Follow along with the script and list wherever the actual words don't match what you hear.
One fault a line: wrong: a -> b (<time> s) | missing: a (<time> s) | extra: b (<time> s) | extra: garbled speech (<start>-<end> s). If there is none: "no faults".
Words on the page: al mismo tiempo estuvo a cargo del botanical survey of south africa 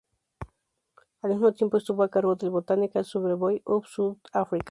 no faults